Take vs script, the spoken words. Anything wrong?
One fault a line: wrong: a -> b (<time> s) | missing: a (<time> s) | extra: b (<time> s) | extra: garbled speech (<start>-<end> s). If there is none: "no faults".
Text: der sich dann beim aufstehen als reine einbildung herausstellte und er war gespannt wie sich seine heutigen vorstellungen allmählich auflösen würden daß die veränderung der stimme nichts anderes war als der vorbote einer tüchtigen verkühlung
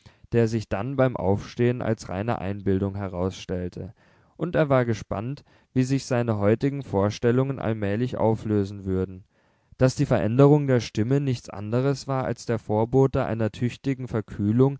no faults